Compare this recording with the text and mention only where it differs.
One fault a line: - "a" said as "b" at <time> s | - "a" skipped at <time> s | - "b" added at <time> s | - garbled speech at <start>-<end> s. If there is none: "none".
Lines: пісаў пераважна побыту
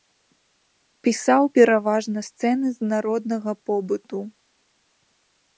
- "сцэны з народнага" added at 2.3 s